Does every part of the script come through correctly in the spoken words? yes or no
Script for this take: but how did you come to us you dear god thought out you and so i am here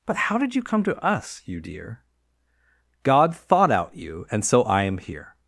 yes